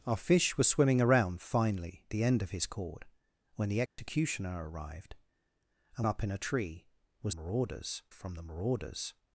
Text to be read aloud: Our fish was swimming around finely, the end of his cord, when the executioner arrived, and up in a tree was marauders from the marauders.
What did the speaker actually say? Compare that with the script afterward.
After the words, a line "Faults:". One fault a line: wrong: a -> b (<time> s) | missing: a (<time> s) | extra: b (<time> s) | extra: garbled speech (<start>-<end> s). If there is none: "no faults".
Our fish was swimming around finely, the end of his cord, when the executioner arrived, and up in a tree was marauders from the marauders.
Faults:
no faults